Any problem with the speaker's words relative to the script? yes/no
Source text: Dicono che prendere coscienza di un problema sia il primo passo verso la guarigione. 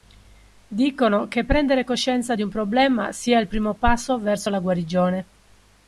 no